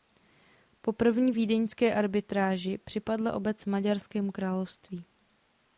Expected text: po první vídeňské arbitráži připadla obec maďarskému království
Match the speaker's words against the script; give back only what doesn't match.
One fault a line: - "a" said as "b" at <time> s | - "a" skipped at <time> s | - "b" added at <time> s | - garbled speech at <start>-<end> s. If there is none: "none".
none